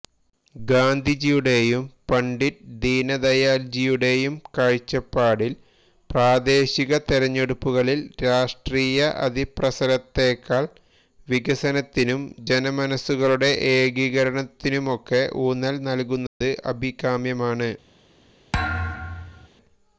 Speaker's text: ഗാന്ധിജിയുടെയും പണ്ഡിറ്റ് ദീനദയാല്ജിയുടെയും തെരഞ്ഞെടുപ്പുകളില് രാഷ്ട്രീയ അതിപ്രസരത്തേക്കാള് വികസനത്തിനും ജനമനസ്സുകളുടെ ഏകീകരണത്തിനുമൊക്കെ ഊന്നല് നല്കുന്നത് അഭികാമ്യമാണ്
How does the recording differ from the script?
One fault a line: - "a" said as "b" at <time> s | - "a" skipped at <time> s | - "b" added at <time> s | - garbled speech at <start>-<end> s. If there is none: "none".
- "കാഴ്ചപ്പാടില് പ്രാദേശിക" added at 4.6 s